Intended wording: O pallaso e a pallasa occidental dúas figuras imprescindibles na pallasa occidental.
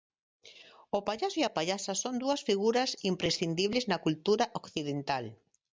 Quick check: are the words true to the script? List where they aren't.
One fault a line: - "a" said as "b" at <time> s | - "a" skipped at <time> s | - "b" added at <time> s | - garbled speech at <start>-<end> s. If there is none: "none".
- "occidental" said as "son" at 2.0 s
- "pallasa" said as "cultura" at 4.0 s